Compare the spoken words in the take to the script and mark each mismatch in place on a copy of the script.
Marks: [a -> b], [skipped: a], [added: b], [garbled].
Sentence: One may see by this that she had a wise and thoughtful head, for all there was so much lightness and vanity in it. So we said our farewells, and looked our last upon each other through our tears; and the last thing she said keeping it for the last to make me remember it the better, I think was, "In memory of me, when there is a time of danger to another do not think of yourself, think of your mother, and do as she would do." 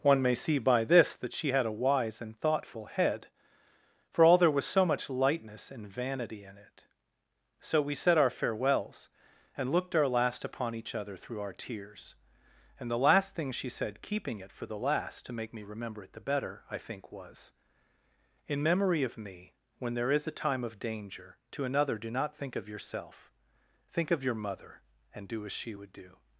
One may see by this that she had a wise and thoughtful head, for all there was so much lightness and vanity in it. So we said our farewells, and looked our last upon each other through our tears; and the last thing she said keeping it for the last to make me remember it the better, I think was, "In memory of me, when there is a time of danger to another do not think of yourself, think of your mother, and do as she would do."